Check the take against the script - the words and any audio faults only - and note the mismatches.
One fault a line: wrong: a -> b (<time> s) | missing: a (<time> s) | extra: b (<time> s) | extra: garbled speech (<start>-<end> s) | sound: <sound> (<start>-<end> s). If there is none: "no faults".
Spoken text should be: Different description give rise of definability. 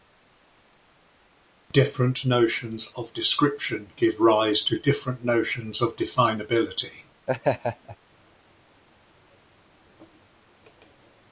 extra: notions of (2.2 s)
extra: to different notions (4.6 s)
sound: laugh (7.3-8.0 s)